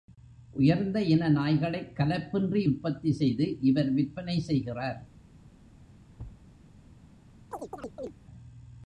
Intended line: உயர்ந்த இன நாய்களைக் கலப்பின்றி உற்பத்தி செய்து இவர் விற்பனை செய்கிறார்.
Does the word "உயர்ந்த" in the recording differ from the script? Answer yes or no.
no